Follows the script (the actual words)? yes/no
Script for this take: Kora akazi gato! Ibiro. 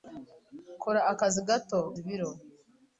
yes